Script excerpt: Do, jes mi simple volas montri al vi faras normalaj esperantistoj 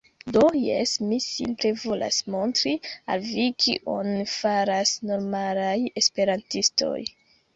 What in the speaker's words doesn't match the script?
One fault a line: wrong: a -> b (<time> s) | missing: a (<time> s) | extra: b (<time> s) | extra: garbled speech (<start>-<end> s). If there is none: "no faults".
extra: kion (3.7 s)